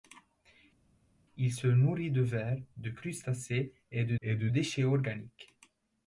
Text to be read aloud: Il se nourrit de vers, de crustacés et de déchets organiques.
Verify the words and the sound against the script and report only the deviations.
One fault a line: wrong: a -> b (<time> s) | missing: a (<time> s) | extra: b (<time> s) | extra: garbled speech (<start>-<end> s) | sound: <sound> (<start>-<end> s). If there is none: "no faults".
extra: et de (4.2 s)